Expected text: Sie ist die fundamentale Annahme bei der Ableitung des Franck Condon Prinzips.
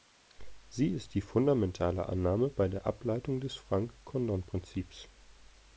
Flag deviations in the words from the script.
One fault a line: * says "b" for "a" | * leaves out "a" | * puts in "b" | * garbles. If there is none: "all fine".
all fine